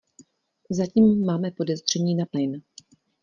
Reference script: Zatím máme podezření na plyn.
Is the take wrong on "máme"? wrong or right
right